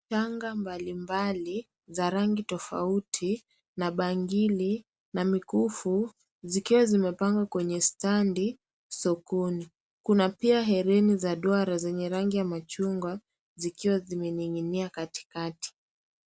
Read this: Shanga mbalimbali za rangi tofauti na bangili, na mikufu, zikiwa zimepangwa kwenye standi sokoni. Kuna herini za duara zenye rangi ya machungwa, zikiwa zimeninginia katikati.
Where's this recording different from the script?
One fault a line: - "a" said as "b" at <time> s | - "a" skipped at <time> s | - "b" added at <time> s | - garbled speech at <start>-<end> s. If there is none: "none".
- "pia" added at 10.3 s